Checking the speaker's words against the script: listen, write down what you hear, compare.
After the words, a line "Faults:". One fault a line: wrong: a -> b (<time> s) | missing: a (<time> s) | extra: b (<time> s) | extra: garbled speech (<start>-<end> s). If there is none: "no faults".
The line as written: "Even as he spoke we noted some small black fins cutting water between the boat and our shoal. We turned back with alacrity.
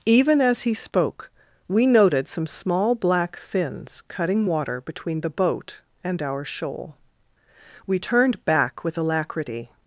"Even as he spoke we noted some small black fins cutting water between the boat and our shoal. We turned back with alacrity.
Faults:
no faults